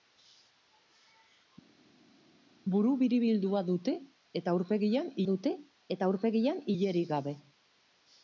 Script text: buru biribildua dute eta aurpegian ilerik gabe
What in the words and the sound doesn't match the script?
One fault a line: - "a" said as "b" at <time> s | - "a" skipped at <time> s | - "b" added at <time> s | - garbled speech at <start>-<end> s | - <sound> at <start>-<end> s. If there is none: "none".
- "dute eta aurpegian" added at 5.3 s